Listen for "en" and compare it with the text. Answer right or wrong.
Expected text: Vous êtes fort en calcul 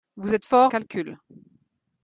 wrong